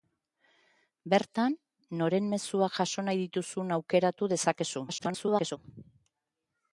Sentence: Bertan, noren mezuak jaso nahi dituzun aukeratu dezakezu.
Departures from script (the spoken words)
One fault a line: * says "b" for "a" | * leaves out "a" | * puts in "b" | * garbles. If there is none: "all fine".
* garbles